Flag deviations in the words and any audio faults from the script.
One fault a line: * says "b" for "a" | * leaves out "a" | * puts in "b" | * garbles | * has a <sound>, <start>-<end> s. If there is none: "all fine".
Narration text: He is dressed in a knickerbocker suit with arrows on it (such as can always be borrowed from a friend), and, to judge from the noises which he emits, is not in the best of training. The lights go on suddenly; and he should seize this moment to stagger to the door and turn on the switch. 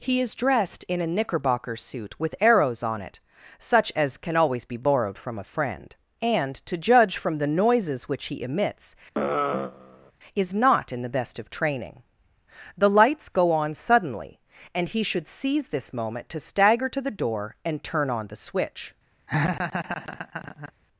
* has a sigh, 9.1-10.1 s
* has a laugh, 19.3-20.7 s